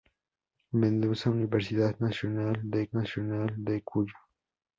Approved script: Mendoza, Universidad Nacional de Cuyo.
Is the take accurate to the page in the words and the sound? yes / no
no